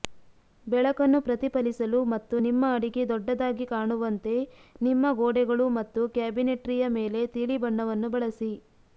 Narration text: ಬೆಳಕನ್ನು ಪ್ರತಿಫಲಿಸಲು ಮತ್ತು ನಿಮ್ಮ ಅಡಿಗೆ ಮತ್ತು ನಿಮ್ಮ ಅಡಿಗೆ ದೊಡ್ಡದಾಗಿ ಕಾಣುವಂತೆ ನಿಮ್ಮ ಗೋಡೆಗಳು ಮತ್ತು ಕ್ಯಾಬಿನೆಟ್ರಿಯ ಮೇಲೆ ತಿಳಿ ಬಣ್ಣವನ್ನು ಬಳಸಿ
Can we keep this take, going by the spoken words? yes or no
no